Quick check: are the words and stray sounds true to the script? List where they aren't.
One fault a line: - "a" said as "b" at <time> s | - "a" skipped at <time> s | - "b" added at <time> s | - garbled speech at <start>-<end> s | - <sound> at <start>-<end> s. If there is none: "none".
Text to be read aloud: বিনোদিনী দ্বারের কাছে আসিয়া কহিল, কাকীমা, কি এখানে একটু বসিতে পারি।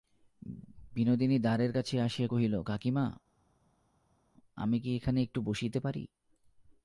- "আমি" added at 4.6 s